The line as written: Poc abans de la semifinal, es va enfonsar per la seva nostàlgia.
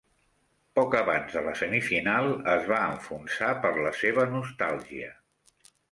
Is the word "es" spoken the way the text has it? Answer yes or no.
yes